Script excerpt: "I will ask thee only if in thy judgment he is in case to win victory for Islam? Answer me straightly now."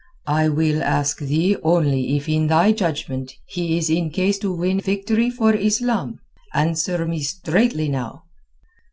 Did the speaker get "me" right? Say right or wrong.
right